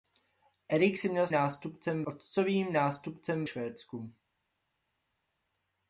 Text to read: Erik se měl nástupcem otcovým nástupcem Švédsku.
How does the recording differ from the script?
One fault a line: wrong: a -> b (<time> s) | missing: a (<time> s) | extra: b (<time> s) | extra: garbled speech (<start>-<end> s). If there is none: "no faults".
no faults